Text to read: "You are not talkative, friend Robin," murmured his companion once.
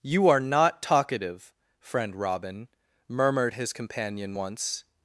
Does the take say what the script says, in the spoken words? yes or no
yes